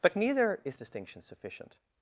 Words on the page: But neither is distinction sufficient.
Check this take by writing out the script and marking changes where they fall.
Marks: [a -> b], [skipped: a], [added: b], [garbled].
But neither is distinction sufficient.